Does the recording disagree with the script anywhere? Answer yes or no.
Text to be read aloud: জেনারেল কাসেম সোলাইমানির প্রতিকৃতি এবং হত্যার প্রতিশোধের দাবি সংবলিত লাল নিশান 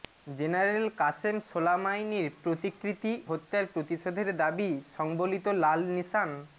yes